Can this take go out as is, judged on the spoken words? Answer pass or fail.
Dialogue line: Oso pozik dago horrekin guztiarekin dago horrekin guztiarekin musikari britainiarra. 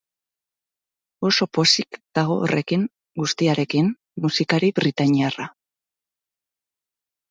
fail